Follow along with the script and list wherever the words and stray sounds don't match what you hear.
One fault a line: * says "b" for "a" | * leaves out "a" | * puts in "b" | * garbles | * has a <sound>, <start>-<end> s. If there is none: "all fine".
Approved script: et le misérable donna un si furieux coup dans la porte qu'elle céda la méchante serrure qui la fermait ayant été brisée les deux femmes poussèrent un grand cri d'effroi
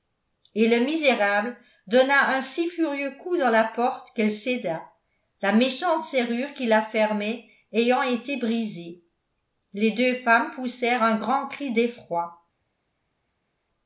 all fine